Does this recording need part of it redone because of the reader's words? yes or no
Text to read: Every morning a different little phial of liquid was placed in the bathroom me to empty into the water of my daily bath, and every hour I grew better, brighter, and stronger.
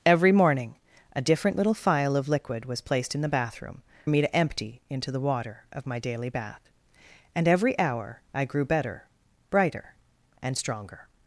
no